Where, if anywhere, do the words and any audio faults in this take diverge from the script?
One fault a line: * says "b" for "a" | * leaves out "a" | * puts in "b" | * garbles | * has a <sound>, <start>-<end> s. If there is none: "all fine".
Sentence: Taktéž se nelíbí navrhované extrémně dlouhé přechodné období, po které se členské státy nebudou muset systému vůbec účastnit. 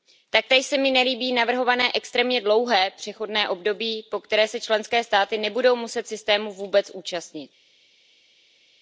* puts in "mi"